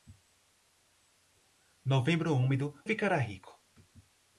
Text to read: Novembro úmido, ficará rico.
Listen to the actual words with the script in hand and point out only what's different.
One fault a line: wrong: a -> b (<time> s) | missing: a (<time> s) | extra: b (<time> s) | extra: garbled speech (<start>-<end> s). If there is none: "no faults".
no faults